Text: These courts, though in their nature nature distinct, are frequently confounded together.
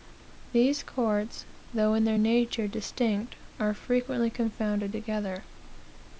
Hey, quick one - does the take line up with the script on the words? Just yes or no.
no